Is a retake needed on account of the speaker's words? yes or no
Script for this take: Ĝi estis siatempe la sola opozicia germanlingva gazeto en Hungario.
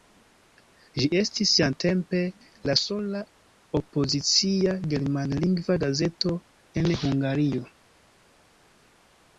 no